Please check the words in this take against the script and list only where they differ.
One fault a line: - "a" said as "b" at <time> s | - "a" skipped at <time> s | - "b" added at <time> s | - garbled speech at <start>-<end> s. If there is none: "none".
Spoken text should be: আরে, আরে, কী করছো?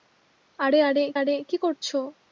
- "আরে" added at 1.1 s